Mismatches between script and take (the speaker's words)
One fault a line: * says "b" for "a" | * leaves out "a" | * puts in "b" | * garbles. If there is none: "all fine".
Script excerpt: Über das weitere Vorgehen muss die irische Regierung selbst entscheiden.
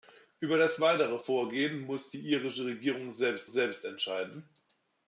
* puts in "selbst"